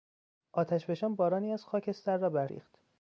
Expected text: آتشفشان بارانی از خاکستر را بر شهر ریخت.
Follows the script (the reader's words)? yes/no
no